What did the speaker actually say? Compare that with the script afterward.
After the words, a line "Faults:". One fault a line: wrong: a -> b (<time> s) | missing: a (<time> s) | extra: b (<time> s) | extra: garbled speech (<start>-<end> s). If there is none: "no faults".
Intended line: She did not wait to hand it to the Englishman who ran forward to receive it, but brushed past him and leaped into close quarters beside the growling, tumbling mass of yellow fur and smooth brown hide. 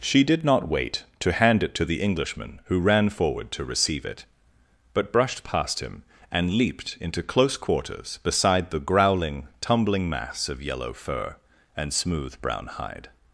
She did not wait to hand it to the Englishman who ran forward to receive it, but brushed past him and leaped into close quarters beside the growling, tumbling mass of yellow fur and smooth brown hide.
Faults:
no faults